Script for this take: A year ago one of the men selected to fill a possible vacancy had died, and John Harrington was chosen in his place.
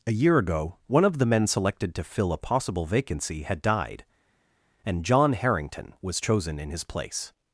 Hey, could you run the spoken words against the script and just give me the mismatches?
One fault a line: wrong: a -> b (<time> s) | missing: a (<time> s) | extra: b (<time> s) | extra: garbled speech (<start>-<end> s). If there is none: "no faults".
no faults